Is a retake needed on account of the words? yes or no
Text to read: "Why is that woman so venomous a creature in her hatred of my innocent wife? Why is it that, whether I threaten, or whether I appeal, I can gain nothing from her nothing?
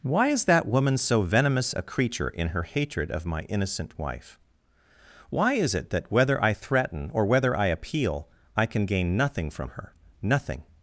no